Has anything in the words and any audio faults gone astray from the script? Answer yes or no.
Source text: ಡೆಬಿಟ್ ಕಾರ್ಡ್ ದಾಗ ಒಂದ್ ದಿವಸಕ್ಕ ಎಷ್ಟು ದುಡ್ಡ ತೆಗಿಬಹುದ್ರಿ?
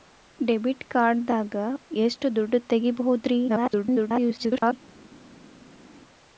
yes